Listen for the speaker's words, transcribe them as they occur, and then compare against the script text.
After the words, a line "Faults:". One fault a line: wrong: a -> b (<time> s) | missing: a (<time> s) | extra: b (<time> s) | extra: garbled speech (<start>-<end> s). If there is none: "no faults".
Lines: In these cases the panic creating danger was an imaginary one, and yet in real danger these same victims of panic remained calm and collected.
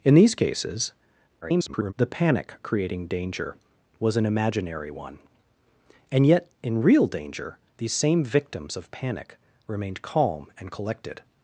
In these cases [garbled] the panic creating danger was an imaginary one, and yet in real danger these same victims of panic remained calm and collected.
Faults:
extra: garbled speech (1.4-1.9 s)